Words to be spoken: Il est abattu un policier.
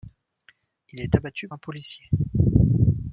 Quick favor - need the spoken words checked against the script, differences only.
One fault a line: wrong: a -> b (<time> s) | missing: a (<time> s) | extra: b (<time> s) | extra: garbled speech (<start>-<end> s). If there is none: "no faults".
no faults